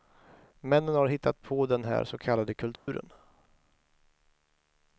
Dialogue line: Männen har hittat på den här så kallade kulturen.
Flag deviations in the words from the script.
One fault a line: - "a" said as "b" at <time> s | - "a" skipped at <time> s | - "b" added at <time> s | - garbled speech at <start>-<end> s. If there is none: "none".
none